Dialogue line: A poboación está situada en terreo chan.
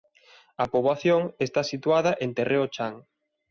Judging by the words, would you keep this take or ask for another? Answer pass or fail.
pass